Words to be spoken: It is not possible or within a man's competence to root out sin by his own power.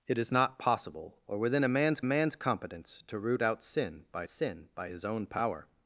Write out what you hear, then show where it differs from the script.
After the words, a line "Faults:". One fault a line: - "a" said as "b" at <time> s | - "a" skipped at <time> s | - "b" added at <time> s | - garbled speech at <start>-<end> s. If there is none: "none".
It is not possible or within a man's man's competence to root out sin by sin by his own power.
Faults:
- "man's" added at 2.0 s
- "sin by" added at 4.3 s